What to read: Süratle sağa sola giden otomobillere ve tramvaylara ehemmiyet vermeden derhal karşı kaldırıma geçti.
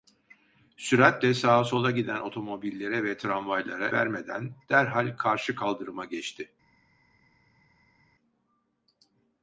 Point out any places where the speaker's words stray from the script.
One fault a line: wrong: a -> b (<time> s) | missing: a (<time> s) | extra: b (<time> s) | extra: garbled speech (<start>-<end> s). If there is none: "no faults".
missing: ehemmiyet (3.9 s)